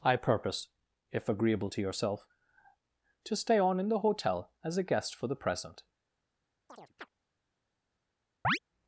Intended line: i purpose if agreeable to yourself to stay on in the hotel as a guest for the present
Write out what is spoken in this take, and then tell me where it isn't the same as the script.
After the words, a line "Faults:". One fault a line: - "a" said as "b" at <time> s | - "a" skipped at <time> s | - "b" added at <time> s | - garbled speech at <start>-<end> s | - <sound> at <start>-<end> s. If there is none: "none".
i purpose if agreeable to yourself to stay on in the hotel as a guest for the present
Faults:
- chirp at 6.7-7.1 s
- chirp at 8.4-8.6 s